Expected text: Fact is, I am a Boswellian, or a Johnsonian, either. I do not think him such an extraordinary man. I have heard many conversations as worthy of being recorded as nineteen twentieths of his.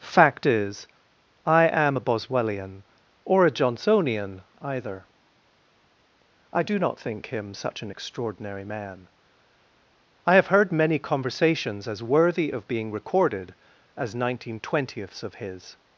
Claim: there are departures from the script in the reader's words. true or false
false